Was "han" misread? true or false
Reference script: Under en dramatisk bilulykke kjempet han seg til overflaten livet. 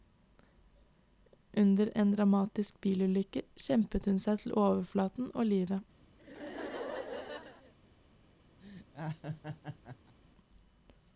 true